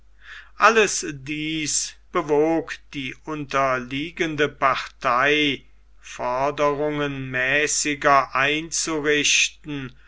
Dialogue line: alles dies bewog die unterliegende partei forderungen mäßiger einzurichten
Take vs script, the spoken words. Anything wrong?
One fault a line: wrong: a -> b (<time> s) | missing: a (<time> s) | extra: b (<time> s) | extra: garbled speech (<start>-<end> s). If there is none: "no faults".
no faults